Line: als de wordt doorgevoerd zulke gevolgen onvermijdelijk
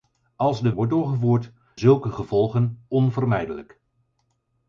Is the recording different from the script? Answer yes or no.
no